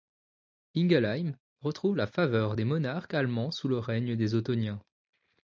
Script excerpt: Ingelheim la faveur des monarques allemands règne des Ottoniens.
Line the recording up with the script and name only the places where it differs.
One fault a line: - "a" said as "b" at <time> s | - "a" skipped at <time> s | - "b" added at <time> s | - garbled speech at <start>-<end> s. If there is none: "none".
- "retrouve" added at 1.6 s
- "sous le" added at 3.5 s